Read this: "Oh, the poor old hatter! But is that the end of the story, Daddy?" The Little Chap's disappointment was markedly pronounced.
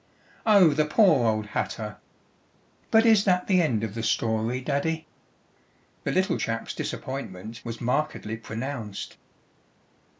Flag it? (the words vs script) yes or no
no